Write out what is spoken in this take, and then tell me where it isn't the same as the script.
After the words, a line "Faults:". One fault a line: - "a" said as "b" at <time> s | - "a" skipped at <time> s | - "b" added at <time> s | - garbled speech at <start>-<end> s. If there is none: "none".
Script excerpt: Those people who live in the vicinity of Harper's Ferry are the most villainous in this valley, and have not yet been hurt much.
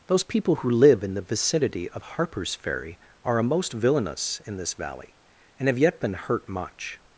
Those people who live in the vicinity of Harper's Ferry are a most villainous in this valley, and have yet been hurt much.
Faults:
- "the" said as "a" at 3.4 s
- "not" skipped at 5.8 s